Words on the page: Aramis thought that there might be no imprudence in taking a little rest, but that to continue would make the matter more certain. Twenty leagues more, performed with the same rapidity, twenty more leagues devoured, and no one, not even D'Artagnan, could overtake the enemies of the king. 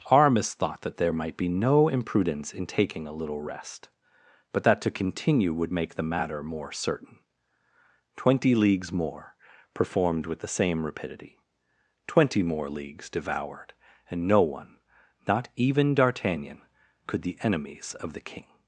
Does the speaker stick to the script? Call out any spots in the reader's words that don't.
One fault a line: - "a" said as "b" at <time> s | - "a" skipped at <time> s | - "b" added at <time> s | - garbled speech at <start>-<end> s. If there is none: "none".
- "overtake" skipped at 17.2 s